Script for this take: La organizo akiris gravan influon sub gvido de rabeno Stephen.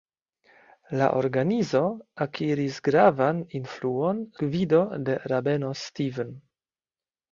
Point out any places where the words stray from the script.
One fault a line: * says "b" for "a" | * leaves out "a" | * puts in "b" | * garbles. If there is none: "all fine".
* leaves out "sub"